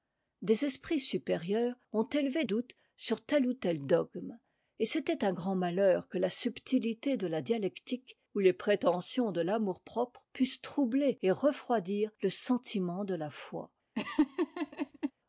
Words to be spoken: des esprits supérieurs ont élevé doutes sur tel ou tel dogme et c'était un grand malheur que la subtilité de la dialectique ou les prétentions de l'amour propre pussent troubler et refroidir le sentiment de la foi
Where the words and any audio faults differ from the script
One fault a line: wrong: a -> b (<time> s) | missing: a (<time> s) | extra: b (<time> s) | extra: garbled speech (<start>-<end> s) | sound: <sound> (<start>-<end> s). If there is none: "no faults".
sound: laugh (13.9-15.1 s)